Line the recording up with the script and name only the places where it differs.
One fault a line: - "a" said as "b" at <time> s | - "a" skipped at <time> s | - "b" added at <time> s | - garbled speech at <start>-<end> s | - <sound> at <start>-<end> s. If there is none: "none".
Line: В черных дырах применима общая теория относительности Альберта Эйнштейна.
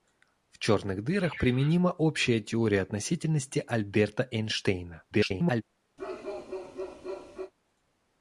- garbled speech at 5.1-5.6 s
- bark at 6.0-7.5 s